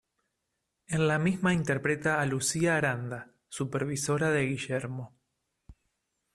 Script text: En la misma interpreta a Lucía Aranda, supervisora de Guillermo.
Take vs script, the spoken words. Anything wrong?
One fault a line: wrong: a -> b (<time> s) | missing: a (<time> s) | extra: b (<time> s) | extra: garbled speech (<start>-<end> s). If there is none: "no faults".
no faults